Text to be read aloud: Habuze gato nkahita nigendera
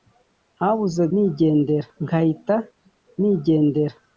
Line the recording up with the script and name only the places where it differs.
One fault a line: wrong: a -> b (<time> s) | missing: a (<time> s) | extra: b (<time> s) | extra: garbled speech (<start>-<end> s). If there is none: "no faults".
wrong: gato -> nigendera (1.1 s)